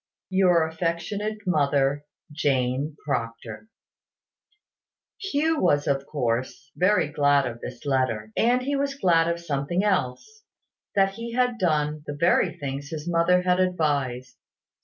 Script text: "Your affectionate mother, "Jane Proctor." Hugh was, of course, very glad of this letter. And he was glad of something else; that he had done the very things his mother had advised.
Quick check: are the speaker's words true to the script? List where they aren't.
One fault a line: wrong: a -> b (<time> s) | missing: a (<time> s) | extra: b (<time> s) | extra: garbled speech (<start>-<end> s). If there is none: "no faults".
no faults